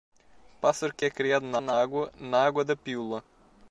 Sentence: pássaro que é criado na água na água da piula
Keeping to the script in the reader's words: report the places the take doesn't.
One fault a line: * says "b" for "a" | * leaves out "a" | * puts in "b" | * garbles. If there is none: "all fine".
* puts in "na"